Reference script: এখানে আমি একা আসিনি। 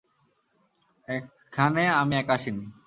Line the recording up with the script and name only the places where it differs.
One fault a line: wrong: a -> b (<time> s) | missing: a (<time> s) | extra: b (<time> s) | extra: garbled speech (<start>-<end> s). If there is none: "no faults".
no faults